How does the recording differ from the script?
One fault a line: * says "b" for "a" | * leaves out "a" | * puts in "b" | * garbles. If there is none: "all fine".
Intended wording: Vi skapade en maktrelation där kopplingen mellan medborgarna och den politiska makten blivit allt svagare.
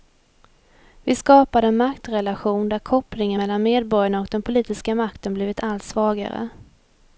all fine